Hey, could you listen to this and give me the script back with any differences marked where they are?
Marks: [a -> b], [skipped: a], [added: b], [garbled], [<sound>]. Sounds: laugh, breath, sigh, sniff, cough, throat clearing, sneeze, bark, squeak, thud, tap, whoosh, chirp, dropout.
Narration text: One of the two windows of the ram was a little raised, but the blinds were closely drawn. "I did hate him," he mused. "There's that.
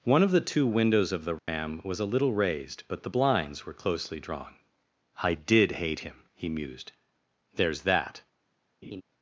One of the two windows of the ram [dropout] was a little raised, but the blinds were closely drawn. "I did hate him," he mused. "There's that. [laugh]